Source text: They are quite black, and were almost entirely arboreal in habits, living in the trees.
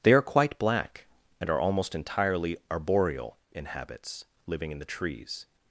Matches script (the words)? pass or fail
fail